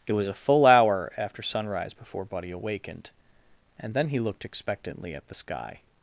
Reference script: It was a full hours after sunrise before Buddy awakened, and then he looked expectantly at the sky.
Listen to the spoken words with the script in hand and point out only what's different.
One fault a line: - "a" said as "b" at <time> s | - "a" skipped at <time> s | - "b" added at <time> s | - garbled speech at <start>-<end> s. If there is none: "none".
- "hours" said as "hour" at 0.7 s